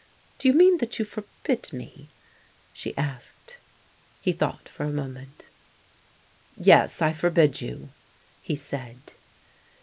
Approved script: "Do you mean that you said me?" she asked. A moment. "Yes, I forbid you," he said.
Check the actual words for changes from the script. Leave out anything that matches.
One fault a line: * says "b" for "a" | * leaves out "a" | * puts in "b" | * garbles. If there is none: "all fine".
* says "forbid" for "said"
* puts in "He thought for"